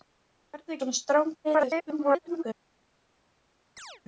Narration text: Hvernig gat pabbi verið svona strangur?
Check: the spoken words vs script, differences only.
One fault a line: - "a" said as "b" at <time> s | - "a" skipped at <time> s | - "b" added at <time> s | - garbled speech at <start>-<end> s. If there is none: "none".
- "gat pabbi verið" skipped at 0.8 s
- garbled speech at 1.4-2.4 s